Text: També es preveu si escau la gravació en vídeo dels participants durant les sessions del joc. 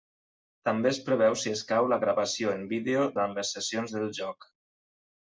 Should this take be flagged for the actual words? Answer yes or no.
yes